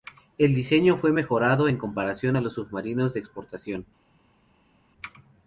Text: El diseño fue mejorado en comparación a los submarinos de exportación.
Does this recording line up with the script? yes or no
yes